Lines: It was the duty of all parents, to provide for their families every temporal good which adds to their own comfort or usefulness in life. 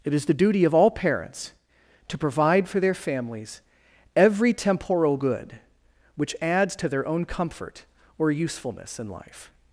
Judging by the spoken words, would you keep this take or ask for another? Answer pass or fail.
fail